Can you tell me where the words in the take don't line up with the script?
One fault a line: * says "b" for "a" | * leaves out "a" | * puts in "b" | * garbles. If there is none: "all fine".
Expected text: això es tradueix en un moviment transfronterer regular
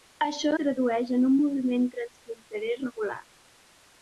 * leaves out "es"